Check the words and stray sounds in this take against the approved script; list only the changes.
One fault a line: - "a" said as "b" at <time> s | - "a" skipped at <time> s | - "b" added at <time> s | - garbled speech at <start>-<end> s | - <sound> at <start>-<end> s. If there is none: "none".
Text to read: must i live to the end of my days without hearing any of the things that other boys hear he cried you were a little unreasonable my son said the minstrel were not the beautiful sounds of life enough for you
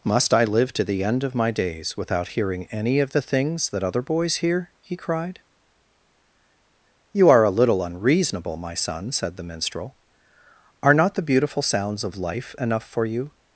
- "were" said as "are" at 7.3 s
- "were" said as "are" at 10.8 s